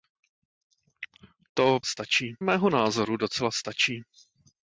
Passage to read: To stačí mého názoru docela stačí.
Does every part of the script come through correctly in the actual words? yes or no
yes